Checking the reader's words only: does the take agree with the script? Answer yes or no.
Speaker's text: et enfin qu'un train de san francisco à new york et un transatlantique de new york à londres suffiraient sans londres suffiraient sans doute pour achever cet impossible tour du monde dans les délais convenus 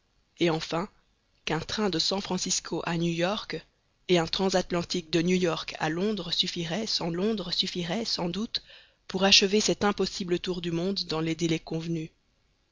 yes